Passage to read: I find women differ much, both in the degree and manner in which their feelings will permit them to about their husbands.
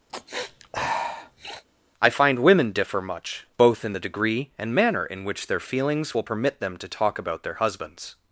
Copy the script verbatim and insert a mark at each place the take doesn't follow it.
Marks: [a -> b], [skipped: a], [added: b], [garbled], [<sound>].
[sniff] I find women differ much, both in the degree and manner in which their feelings will permit them to [added: talk] about their husbands.